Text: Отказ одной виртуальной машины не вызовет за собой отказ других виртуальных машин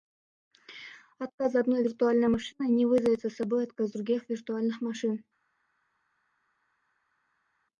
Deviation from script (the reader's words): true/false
false